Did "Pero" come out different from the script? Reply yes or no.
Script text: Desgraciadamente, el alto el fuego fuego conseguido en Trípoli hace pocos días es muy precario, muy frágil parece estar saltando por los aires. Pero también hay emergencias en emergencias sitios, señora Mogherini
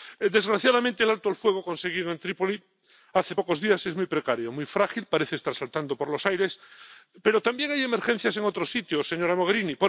no